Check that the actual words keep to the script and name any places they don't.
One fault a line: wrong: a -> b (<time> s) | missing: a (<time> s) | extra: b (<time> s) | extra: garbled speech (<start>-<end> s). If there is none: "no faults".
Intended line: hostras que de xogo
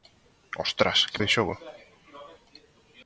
no faults